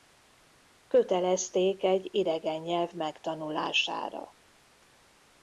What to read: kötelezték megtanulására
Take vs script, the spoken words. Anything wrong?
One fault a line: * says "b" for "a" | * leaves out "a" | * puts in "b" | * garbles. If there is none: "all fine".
* puts in "egy idegen nyelv"